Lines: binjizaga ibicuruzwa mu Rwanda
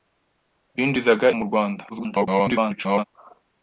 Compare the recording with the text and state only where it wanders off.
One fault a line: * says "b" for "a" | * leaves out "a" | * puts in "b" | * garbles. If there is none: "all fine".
* leaves out "ibicuruzwa"
* garbles